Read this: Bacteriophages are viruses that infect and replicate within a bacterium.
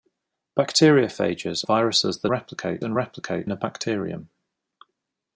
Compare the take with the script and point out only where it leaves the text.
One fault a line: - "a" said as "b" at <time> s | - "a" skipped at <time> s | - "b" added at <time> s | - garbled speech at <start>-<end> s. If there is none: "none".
- "are" skipped at 1.6 s
- "infect" said as "replicate" at 2.3 s
- "within" skipped at 3.5 s